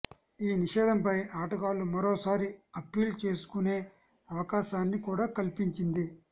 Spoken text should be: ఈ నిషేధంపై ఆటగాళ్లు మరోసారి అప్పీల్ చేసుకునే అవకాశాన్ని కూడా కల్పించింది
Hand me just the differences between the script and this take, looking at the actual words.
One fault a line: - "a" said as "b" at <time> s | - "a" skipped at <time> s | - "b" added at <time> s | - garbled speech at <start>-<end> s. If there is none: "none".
none